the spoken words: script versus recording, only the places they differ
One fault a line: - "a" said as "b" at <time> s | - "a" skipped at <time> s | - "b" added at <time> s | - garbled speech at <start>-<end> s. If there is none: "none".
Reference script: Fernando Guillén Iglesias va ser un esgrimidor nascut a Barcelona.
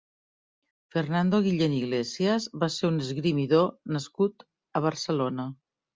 none